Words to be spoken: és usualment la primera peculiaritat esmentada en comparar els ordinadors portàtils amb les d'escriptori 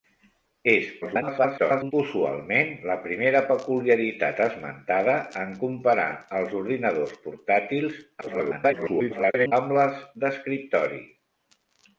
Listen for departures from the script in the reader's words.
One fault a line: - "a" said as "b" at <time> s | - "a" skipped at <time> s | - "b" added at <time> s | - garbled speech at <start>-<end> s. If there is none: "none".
- garbled speech at 1.0-1.9 s
- garbled speech at 8.2-9.5 s